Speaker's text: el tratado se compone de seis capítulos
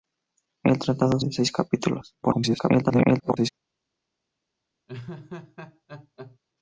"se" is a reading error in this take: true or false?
true